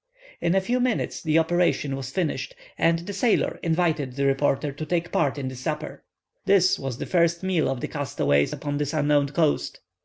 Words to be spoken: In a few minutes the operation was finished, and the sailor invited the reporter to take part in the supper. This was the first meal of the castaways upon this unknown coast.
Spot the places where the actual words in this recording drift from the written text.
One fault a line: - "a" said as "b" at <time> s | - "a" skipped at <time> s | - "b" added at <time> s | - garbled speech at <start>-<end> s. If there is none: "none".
none